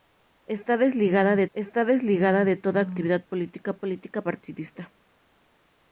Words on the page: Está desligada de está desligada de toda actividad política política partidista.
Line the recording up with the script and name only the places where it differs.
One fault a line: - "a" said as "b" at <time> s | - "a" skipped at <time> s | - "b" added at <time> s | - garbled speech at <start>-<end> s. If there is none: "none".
none